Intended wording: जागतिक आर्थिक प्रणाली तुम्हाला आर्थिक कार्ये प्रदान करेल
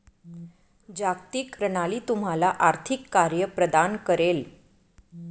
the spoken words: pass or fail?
fail